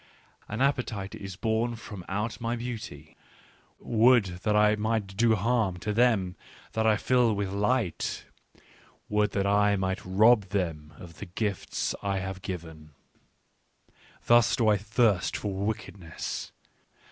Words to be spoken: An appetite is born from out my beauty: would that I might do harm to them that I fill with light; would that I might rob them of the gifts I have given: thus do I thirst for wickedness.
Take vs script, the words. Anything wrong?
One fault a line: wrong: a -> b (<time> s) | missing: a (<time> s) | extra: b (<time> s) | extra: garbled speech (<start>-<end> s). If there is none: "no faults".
no faults